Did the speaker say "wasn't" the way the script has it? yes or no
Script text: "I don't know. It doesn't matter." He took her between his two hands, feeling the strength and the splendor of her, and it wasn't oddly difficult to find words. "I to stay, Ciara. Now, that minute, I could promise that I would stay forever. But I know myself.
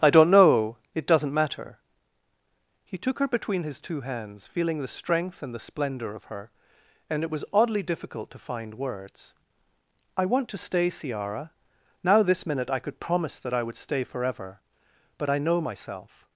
no